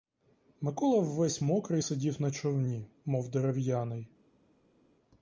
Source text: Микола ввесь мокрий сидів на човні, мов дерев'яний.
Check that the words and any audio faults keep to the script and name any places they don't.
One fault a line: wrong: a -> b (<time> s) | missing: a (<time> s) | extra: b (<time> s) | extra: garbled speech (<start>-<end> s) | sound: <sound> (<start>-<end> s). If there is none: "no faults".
no faults